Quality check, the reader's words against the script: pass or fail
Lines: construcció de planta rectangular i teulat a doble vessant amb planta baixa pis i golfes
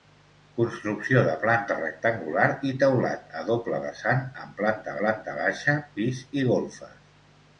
fail